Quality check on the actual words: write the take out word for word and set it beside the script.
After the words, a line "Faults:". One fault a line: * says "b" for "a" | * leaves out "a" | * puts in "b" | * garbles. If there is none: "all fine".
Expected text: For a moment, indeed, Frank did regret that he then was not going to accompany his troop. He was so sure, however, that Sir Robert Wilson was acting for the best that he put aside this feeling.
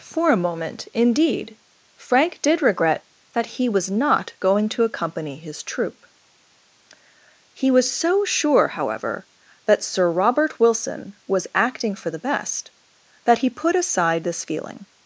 For a moment, indeed, Frank did regret that he was not going to accompany his troop. He was so sure, however, that Sir Robert Wilson was acting for the best that he put aside this feeling.
Faults:
* leaves out "then"